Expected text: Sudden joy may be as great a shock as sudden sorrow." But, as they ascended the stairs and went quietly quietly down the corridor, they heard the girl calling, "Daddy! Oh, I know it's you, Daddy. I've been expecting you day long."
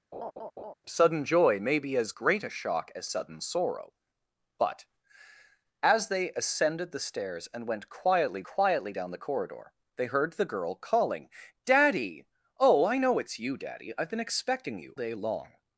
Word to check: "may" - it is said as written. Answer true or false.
true